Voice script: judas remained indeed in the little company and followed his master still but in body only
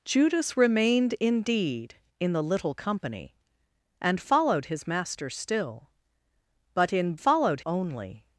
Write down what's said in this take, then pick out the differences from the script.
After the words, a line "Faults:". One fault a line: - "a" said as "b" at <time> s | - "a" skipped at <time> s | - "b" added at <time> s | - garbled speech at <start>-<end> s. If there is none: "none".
judas remained indeed in the little company and followed his master still but in followed only
Faults:
- "body" said as "followed" at 7.1 s